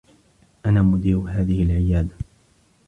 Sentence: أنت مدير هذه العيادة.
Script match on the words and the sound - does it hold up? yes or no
no